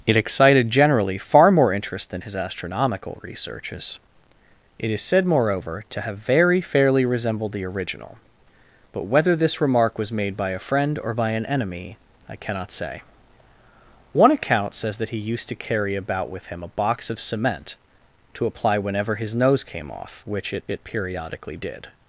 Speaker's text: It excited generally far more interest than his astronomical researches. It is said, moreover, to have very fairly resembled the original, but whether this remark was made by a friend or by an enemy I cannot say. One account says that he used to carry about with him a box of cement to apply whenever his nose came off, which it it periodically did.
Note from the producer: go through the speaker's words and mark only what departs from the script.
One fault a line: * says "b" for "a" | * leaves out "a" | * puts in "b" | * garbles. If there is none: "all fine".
all fine